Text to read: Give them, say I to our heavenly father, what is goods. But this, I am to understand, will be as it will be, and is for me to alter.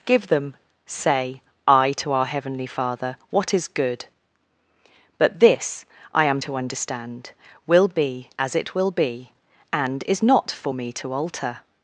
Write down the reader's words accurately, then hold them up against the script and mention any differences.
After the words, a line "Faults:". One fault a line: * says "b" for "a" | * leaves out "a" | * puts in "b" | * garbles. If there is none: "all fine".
Give them, say I to our heavenly father, what is good. But this, I am to understand, will be as it will be, and is not for me to alter.
Faults:
* says "good" for "goods"
* puts in "not"